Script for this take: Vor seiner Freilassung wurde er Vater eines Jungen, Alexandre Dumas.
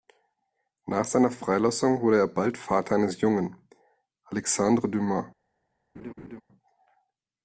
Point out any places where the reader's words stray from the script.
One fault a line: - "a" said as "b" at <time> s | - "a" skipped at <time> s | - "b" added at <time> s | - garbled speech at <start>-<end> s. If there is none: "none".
- "Vor" said as "Nach" at 0.9 s
- "bald" added at 2.3 s